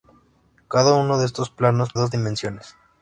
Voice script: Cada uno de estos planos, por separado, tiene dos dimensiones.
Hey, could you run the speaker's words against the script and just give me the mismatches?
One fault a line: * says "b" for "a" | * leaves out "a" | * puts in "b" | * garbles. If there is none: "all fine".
* leaves out "por separado tiene"